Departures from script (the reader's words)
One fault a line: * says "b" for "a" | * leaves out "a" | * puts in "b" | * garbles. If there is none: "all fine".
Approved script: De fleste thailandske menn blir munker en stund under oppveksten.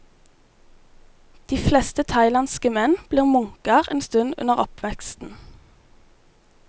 all fine